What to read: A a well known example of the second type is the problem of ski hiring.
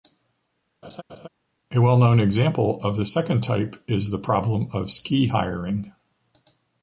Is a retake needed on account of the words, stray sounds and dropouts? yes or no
yes